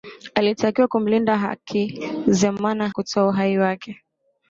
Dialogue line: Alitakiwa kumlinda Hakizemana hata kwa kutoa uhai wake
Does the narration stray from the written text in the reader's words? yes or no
yes